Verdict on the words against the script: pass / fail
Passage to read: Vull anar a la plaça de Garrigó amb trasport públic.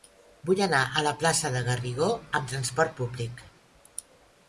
pass